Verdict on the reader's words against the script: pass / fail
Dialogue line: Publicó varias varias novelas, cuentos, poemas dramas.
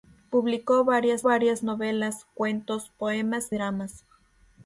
pass